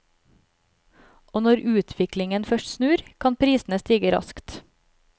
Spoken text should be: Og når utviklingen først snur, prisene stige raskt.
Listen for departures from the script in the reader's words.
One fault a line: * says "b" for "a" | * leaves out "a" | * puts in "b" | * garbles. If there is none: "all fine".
* puts in "kan"